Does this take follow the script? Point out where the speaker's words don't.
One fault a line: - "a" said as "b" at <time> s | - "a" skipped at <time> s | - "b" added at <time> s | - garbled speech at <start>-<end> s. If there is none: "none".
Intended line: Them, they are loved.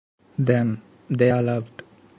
none